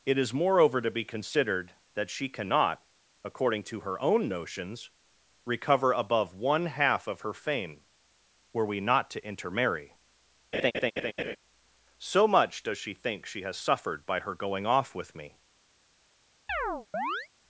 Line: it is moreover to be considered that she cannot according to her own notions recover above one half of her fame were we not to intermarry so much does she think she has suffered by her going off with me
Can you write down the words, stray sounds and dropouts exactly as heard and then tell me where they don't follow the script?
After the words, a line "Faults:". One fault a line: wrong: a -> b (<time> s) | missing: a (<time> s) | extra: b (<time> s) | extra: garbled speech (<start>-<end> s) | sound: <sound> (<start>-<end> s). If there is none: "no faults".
it is moreover to be considered that she cannot according to her own notions recover above one half of her fame were we not to intermarry so much does she think she has suffered by her going off with me
Faults:
sound: laugh (10.5-11.4 s)
sound: chirp (16.5-17.3 s)